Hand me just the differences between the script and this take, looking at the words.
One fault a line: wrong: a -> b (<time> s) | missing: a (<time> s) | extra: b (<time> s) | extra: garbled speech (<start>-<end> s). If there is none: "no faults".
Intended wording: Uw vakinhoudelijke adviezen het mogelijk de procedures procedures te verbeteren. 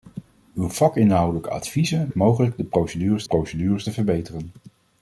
no faults